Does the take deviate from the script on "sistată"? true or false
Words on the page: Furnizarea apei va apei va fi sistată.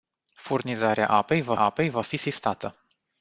false